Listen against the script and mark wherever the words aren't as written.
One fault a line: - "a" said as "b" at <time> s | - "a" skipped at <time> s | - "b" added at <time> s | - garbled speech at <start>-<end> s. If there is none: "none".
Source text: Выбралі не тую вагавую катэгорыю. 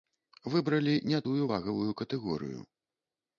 none